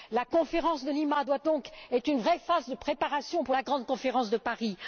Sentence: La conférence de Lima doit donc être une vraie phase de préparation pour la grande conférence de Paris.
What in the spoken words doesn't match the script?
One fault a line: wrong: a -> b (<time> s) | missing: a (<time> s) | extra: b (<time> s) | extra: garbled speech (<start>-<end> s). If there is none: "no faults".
no faults